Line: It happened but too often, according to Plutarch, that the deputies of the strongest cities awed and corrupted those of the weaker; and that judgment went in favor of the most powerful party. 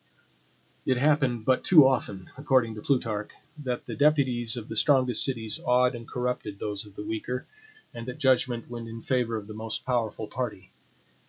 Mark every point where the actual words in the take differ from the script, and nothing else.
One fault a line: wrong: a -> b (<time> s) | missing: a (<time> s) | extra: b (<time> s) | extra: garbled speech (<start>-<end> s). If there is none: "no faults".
no faults